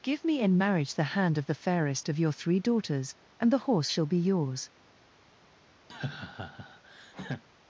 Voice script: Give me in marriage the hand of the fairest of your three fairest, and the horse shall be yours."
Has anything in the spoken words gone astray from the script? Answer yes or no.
yes